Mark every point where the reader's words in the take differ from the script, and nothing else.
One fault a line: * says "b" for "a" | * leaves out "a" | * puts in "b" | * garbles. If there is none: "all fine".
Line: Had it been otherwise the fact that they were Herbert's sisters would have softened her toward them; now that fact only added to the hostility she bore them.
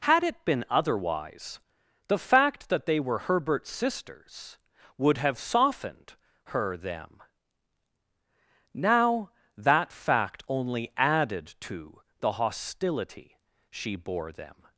* leaves out "toward"